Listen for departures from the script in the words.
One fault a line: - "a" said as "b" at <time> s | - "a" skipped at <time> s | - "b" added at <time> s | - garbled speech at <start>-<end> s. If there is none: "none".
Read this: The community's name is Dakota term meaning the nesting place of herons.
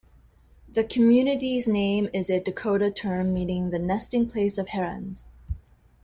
- "a" added at 2.3 s